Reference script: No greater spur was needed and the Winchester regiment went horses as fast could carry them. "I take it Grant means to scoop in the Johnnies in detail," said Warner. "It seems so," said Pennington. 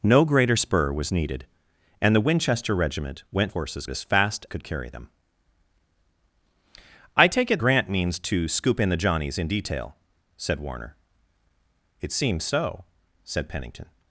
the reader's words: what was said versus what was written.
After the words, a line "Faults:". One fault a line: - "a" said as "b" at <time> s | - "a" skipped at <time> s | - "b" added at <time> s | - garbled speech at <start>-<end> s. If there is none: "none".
No greater spur was needed and the Winchester regiment went horses as fast could carry them. "I take it Grant means to scoop in the Johnnies in detail," said Warner. "It seems so," said Pennington.
Faults:
none